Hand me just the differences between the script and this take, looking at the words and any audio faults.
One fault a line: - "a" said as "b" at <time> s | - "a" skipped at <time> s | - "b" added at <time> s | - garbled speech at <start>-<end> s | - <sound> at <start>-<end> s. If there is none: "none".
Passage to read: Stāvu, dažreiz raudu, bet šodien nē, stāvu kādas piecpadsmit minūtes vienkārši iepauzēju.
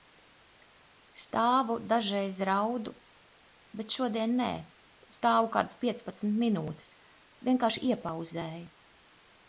none